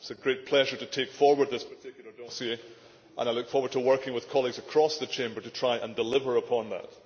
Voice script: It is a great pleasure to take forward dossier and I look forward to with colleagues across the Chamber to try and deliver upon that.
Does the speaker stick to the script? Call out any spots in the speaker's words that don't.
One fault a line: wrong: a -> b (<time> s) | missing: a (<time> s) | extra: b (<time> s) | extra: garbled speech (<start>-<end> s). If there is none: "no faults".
extra: this particular (1.5 s)
extra: working (3.8 s)